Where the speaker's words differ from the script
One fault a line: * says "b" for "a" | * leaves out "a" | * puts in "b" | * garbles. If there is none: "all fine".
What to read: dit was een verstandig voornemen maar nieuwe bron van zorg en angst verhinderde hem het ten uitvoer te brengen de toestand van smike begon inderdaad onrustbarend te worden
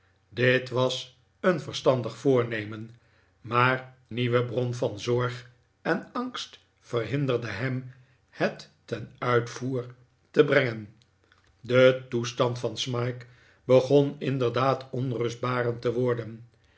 all fine